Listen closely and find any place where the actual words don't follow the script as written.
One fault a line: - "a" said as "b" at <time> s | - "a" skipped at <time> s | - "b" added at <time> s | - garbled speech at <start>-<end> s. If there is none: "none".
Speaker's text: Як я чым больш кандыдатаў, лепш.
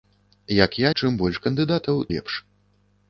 none